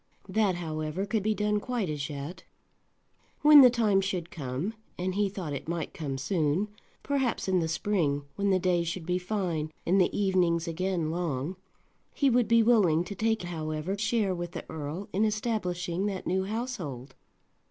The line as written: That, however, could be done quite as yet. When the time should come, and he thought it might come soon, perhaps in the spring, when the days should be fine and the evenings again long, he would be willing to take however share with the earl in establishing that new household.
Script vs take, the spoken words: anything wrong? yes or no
no